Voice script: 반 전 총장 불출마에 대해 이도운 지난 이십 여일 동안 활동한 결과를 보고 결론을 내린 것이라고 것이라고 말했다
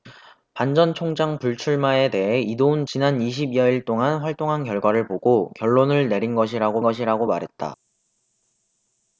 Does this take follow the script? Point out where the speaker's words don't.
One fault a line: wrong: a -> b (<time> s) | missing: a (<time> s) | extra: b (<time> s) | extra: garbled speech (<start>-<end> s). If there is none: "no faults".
no faults